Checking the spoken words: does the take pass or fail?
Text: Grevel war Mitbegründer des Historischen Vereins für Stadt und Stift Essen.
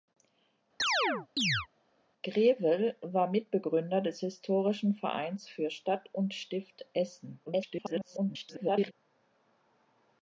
fail